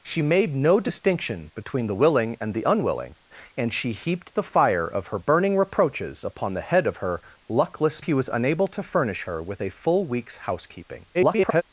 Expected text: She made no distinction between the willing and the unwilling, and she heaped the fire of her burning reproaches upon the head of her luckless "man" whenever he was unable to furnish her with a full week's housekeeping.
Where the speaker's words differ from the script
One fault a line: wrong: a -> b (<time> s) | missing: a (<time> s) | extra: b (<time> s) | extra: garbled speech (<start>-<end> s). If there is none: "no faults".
missing: man whenever (8.0 s)
extra: garbled speech (11.1-11.6 s)